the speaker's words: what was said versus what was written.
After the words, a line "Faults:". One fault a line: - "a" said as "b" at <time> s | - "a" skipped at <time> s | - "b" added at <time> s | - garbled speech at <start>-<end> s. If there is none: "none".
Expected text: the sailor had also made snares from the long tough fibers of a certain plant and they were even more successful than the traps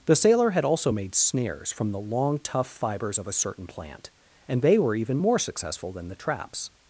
the sailor had also made snares from the long tough fibers of a certain plant and they were even more successful than the traps
Faults:
none